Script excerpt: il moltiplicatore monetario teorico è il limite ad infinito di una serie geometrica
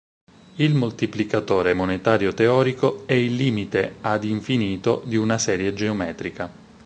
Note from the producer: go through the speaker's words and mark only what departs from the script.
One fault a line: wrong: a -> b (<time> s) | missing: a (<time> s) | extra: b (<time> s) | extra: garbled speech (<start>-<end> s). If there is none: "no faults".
no faults